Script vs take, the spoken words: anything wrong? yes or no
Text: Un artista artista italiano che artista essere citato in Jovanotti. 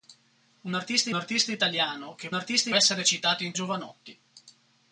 no